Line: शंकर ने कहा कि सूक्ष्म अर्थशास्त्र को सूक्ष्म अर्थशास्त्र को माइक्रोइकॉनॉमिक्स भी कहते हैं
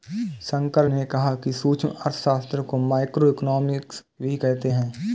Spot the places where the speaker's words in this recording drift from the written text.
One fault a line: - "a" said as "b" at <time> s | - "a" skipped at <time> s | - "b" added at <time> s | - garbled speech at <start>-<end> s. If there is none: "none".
- "सूक्ष्म अर्थशास्त्र को" skipped at 2.8 s